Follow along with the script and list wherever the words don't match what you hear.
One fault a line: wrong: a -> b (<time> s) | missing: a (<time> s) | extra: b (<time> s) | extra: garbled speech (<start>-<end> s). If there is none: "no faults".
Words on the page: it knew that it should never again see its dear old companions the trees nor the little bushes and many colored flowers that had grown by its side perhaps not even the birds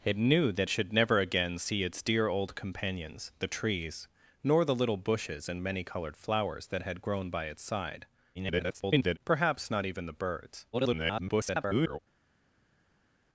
missing: it (0.7 s)
extra: garbled speech (8.3-9.2 s)
extra: garbled speech (10.7-12.0 s)